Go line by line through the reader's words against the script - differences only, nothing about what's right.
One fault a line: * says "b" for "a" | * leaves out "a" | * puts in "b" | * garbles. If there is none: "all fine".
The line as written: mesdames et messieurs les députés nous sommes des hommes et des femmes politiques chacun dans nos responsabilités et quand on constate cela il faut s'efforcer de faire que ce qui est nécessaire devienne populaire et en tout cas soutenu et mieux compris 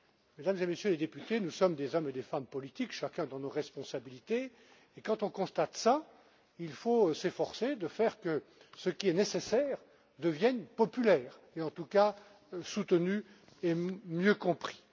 all fine